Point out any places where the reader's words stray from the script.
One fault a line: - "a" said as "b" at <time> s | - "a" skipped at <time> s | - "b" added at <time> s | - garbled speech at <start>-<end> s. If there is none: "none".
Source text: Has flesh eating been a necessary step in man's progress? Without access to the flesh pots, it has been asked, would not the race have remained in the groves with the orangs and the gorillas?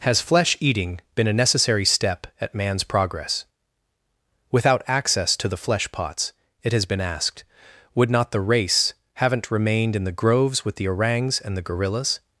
- "in" said as "at" at 2.4 s
- "have" said as "haven't" at 9.2 s